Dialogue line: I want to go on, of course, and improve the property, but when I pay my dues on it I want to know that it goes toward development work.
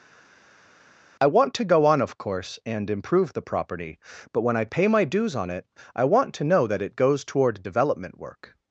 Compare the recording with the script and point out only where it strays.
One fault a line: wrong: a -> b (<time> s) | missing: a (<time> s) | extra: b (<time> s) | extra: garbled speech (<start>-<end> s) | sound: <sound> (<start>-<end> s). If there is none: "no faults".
no faults